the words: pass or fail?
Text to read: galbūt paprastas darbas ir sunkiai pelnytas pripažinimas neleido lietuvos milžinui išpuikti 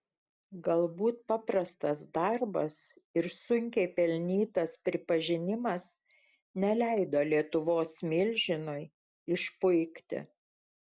pass